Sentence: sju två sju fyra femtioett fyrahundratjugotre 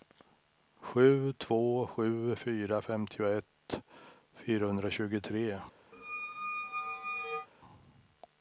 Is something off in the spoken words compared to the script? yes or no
no